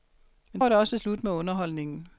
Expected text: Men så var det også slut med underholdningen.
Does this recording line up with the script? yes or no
no